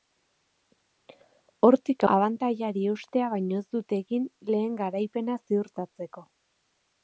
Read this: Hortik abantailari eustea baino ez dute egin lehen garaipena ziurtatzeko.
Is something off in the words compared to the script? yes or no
no